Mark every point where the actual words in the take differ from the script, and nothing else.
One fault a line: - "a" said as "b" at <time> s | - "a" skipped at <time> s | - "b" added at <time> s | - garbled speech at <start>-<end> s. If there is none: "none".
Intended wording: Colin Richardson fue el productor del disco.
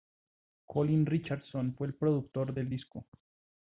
none